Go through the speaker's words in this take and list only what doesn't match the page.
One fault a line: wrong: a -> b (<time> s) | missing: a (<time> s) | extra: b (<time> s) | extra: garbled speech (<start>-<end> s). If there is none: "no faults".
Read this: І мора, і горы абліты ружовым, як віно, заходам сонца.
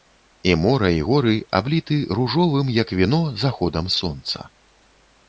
no faults